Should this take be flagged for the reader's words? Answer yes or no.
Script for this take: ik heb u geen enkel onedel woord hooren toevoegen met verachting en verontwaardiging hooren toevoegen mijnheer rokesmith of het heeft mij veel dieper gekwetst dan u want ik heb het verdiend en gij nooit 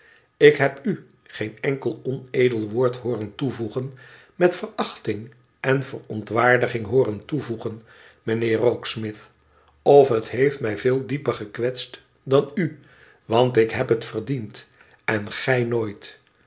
no